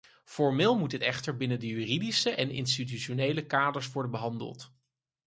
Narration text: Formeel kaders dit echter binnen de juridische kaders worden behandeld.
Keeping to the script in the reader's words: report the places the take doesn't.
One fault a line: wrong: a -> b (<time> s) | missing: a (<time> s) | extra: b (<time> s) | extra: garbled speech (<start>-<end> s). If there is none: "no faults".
wrong: kaders -> moet (0.8 s)
extra: en institutionele (2.3 s)